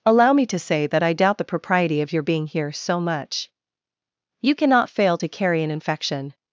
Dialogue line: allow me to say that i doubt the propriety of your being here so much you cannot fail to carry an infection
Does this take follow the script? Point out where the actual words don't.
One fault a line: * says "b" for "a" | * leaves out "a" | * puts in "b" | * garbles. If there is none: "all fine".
all fine